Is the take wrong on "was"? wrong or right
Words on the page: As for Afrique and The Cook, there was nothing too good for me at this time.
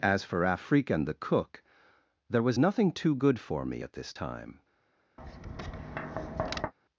right